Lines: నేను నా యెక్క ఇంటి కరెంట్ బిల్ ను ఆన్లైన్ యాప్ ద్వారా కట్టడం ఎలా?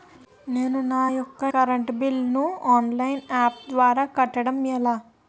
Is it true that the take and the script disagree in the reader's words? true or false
true